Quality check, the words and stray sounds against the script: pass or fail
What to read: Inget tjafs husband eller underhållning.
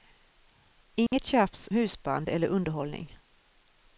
fail